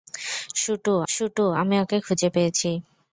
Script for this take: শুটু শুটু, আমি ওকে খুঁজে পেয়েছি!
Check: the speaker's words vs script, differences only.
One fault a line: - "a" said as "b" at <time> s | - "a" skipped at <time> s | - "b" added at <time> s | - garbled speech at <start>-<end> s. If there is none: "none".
none